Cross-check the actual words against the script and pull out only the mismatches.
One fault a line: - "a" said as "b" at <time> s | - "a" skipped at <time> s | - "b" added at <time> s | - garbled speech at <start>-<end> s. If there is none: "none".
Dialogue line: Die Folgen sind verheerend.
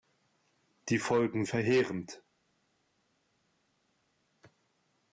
- "sind" skipped at 1.4 s